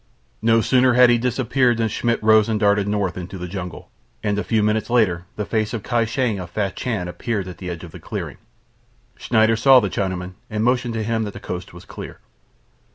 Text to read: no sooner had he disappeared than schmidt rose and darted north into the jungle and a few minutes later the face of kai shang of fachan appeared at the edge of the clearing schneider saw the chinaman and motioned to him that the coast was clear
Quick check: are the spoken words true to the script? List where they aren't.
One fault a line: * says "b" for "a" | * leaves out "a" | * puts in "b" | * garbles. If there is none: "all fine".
all fine